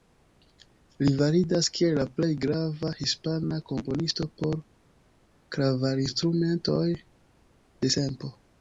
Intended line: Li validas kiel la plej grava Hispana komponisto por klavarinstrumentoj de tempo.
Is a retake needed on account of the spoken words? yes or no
no